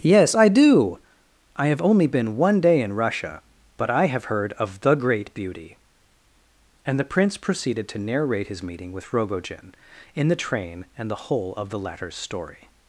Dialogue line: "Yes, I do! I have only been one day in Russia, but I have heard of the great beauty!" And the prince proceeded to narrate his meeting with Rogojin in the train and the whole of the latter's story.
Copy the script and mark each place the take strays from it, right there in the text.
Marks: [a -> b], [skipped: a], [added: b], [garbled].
"Yes, I do! I have only been one day in Russia, but I have heard of the great beauty!" And the prince proceeded to narrate his meeting with Rogojin in the train and the whole of the latter's story.